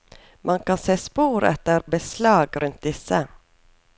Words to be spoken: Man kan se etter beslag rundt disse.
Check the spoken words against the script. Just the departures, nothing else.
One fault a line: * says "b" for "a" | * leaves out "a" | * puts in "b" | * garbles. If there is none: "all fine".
* puts in "spor"